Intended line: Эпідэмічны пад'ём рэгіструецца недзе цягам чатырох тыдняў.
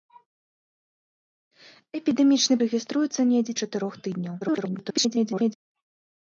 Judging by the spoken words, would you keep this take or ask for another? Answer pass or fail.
fail